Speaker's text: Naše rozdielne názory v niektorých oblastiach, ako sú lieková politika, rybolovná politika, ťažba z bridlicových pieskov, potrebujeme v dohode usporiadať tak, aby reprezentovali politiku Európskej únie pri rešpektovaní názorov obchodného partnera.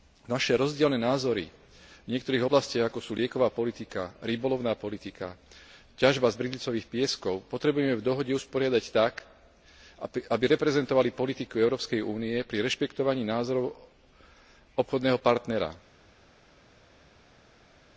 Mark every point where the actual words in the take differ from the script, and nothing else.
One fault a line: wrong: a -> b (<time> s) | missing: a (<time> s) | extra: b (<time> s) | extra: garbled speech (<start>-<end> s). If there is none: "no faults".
no faults